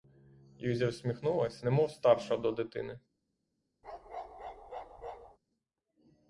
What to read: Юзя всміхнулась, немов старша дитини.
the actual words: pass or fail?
fail